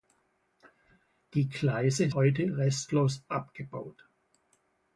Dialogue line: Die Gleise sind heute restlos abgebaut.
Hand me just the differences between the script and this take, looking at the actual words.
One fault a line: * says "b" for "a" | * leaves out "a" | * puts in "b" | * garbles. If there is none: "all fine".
* leaves out "sind"